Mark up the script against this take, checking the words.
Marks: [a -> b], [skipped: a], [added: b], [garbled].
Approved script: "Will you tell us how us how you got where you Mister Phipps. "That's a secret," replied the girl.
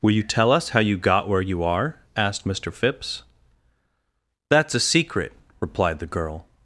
"Will you tell us how [skipped: us how] you got where you [added: are asked] Mister Phipps. "That's a secret," replied the girl.